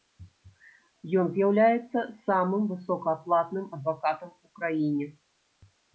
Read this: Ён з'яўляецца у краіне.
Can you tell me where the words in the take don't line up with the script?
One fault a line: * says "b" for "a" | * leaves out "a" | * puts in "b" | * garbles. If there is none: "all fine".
* puts in "самым высокааплатным адвакатам"